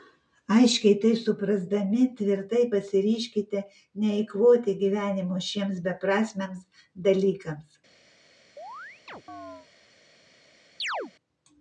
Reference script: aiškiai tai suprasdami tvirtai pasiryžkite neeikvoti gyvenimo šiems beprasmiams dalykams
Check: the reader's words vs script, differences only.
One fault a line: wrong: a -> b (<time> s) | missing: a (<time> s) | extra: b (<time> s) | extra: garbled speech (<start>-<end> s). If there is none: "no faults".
no faults